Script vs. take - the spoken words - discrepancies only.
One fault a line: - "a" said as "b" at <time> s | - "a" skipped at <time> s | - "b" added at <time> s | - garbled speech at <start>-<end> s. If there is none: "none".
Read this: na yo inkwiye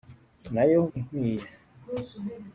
none